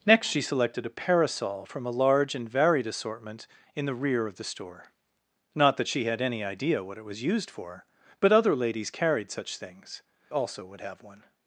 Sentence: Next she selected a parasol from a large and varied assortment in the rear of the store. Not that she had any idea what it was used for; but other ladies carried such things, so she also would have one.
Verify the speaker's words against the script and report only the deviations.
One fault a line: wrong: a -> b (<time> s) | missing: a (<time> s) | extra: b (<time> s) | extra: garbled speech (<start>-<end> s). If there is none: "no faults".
missing: so she (10.0 s)